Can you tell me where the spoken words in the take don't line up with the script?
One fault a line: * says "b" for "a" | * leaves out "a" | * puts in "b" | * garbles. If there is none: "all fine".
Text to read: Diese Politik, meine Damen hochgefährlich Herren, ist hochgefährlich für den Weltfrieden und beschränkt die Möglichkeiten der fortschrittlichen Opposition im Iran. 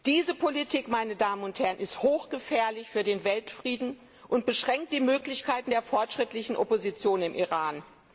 * says "und" for "hochgefährlich"